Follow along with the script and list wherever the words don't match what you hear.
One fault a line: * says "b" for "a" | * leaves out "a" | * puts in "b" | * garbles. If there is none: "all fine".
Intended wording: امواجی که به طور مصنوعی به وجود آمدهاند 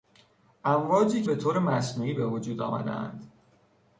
* leaves out "که"